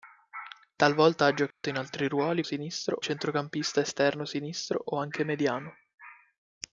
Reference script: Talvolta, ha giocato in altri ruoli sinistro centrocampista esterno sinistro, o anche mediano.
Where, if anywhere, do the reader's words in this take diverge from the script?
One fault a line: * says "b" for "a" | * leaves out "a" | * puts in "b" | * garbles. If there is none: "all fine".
all fine